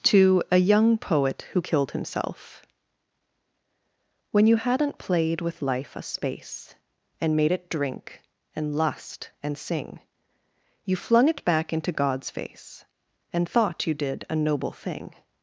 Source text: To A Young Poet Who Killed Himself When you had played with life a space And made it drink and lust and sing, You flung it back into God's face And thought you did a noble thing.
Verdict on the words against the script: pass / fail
fail